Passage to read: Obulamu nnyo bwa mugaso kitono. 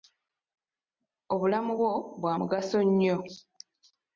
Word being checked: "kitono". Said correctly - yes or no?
no